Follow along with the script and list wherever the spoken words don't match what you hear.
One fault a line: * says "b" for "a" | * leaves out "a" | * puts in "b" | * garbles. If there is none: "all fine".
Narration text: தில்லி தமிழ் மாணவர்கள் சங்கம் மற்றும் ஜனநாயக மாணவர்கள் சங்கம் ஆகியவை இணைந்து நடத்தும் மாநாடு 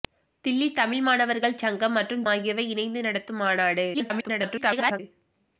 * leaves out "ஜனநாயக மாணவர்கள் சங்கம்"
* garbles